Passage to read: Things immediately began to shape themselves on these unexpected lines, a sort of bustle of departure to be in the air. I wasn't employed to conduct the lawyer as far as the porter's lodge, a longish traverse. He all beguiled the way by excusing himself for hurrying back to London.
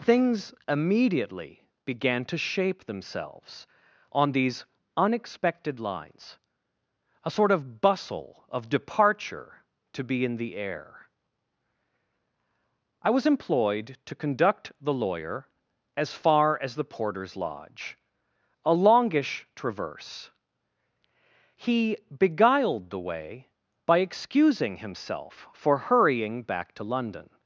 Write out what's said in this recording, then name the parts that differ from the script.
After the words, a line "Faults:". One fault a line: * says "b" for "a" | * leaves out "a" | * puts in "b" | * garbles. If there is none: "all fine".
Things immediately began to shape themselves on these unexpected lines, a sort of bustle of departure to be in the air. I was employed to conduct the lawyer as far as the porter's lodge, a longish traverse. He beguiled the way by excusing himself for hurrying back to London.
Faults:
* says "was" for "wasn't"
* leaves out "all"